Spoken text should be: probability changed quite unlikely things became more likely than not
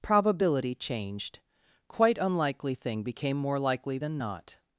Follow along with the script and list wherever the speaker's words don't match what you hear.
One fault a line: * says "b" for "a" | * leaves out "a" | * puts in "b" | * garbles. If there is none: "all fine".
* says "thing" for "things"